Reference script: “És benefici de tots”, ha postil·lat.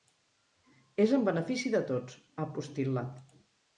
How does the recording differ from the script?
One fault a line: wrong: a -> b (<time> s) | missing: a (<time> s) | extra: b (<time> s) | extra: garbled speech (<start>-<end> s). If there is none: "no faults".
extra: en (1.2 s)